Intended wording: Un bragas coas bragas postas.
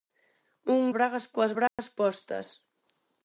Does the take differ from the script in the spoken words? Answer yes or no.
no